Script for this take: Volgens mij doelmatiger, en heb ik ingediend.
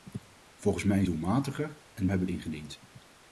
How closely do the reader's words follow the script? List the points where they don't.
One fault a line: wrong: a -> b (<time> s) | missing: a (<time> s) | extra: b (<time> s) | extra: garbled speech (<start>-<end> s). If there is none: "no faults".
no faults